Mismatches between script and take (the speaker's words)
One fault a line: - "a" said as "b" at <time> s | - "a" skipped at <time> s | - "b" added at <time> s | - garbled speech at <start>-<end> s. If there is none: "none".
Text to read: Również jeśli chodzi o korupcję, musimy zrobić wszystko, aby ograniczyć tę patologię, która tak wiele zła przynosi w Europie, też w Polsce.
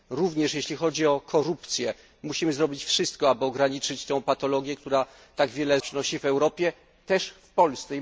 - "zła" skipped at 5.8 s